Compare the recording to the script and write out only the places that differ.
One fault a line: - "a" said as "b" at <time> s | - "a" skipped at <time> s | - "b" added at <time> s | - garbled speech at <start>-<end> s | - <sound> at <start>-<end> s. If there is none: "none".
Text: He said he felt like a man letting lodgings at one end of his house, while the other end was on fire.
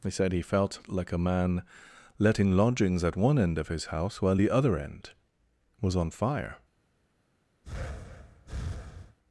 - breath at 7.6-9.2 s